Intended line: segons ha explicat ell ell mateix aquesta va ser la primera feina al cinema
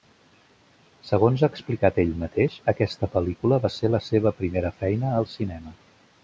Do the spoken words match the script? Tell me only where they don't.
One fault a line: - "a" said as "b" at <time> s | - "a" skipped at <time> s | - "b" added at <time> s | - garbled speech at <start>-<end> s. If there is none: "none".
- "ell" skipped at 2.1 s
- "pel·lícula" added at 3.2 s
- "seva" added at 4.1 s